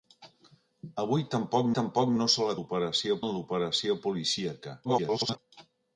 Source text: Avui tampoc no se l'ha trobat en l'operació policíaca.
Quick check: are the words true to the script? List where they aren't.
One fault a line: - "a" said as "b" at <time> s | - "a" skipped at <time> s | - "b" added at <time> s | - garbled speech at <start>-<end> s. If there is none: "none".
- "tampoc" added at 1.8 s
- "trobat" said as "l'operació" at 2.6 s
- garbled speech at 4.8-5.4 s